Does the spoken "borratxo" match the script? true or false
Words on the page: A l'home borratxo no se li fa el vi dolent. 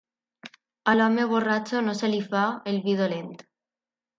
true